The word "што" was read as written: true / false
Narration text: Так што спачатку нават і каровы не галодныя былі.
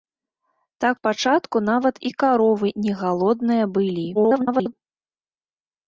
false